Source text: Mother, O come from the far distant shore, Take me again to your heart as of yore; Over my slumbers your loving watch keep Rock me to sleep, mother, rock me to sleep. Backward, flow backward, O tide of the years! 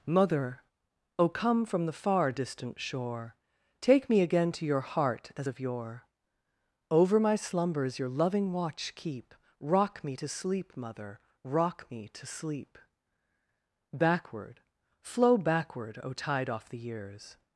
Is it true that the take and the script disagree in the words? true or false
true